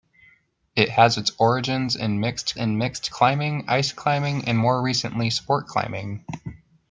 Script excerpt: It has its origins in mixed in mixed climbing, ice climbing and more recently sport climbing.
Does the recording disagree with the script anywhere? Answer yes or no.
no